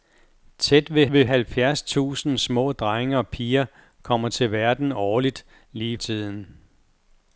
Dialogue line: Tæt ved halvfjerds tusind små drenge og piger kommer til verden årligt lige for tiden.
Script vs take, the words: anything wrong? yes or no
yes